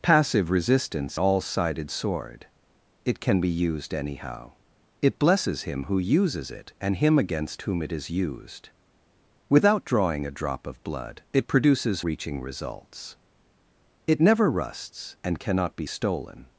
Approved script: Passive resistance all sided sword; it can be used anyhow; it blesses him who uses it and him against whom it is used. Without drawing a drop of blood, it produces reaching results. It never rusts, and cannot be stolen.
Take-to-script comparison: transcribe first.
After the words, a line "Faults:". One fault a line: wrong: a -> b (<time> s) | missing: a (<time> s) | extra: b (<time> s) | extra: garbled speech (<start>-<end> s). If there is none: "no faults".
Passive resistance all sided sword; it can be used anyhow; it blesses him who uses it and him against whom it is used. Without drawing a drop of blood, it produces reaching results. It never rusts, and cannot be stolen.
Faults:
no faults